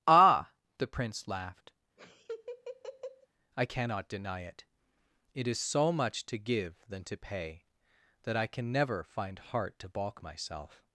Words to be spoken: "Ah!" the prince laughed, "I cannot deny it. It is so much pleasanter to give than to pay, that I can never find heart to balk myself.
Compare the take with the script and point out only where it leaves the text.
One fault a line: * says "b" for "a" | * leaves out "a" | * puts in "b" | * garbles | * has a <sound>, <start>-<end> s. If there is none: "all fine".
* has a laugh, 2.0-3.3 s
* leaves out "pleasanter"